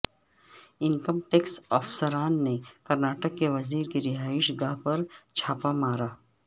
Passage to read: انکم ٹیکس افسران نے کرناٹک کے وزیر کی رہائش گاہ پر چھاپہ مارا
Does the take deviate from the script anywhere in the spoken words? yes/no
no